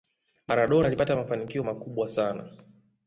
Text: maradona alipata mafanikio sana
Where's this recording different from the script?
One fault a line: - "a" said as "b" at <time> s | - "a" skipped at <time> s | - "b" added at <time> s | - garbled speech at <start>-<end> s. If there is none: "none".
- "makubwa" added at 1.6 s